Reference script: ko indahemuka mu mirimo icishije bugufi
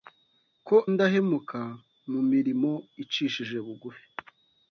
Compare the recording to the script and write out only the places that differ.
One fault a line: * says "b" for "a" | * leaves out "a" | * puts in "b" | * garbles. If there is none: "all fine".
all fine